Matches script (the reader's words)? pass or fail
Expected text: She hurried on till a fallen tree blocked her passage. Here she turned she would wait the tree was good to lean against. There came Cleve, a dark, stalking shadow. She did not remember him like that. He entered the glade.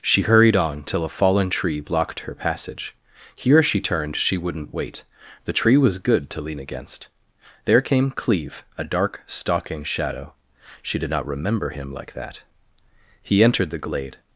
fail